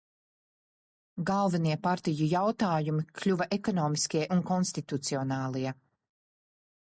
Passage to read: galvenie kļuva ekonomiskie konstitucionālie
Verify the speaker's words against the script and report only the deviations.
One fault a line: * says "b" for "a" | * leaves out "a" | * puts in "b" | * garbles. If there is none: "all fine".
* puts in "partiju jautājumi"
* puts in "un"